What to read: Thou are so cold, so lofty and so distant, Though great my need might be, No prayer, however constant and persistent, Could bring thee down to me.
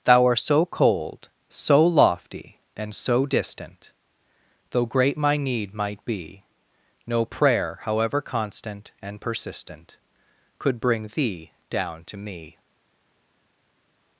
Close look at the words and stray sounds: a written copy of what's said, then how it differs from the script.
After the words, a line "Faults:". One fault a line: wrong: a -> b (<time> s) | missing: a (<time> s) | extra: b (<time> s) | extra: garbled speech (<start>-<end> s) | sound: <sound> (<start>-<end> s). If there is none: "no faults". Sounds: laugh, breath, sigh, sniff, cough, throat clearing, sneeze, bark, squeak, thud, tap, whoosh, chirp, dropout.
Thou art so cold, so lofty and so distant, Though great my need might be, No prayer, however constant and persistent, Could bring thee down to me.
Faults:
wrong: are -> art (0.2 s)